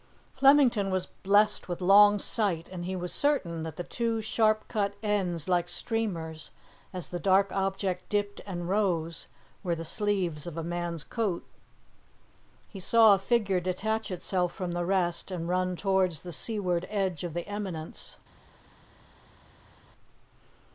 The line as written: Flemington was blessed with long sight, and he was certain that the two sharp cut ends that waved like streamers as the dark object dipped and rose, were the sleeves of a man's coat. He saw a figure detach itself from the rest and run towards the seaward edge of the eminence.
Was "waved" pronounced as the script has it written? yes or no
no